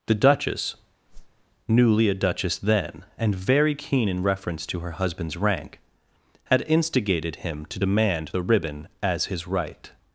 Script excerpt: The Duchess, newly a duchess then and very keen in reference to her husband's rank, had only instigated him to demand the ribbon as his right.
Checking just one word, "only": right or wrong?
wrong